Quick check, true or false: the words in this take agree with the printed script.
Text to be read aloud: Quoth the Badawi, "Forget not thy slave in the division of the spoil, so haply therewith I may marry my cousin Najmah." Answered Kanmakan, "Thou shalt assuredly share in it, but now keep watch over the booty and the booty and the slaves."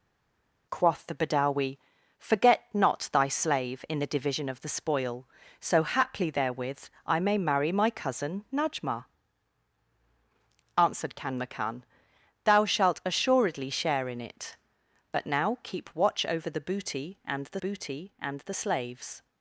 true